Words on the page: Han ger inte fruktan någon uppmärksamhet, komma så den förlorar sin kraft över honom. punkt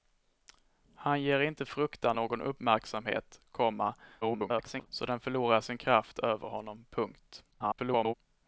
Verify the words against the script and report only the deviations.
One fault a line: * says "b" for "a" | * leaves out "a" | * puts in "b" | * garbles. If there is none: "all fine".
* garbles
* garbles